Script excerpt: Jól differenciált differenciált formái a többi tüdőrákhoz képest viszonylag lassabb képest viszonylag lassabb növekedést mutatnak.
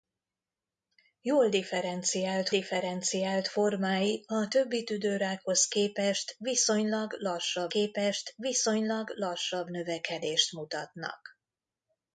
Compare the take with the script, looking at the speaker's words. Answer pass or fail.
pass